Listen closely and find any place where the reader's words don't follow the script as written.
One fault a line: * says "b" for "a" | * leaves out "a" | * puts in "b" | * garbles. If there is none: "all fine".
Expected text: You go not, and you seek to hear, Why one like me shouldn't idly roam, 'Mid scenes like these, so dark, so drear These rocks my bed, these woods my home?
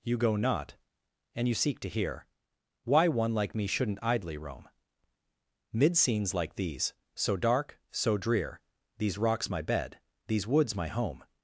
all fine